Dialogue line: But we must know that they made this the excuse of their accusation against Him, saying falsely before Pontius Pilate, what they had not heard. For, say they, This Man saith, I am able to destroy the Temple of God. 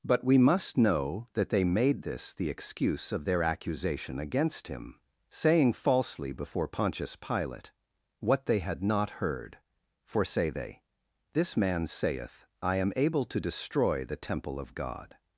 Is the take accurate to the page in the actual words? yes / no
yes